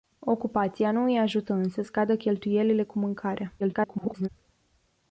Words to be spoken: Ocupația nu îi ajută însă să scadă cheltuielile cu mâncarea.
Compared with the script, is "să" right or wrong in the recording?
wrong